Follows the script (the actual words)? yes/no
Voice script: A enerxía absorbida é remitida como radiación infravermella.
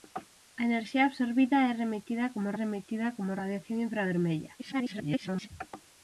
no